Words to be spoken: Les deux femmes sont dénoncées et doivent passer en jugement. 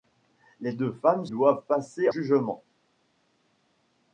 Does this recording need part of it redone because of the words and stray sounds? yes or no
yes